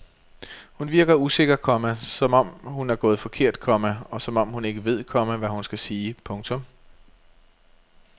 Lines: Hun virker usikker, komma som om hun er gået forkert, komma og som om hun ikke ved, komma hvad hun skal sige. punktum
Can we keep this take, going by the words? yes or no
yes